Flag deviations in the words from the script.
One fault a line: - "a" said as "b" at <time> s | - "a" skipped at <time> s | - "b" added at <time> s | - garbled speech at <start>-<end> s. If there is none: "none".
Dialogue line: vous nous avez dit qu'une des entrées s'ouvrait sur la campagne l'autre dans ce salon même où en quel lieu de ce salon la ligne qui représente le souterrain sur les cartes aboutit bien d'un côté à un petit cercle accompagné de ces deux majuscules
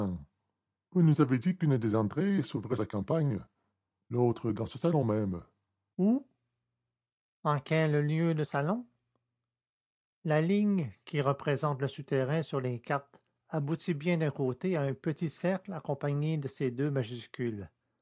- "sur" skipped at 2.8 s
- "ce" skipped at 8.4 s